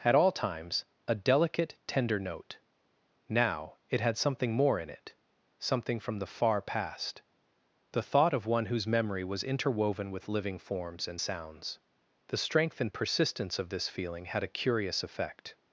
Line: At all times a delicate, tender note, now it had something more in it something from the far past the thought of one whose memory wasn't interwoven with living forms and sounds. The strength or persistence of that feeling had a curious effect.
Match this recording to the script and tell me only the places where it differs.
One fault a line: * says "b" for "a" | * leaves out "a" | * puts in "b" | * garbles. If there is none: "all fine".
* says "was" for "wasn't"
* says "and" for "or"
* says "this" for "that"